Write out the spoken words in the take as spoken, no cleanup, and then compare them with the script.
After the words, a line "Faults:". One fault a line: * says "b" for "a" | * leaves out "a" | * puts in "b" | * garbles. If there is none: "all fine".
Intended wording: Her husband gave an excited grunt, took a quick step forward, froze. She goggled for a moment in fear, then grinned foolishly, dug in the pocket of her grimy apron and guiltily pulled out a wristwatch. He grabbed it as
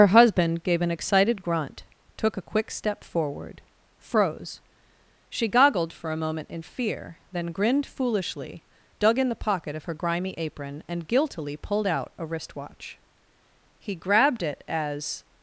Her husband gave an excited grunt, took a quick step forward, froze. She goggled for a moment in fear, then grinned foolishly, dug in the pocket of her grimy apron and guiltily pulled out a wristwatch. He grabbed it as
Faults:
all fine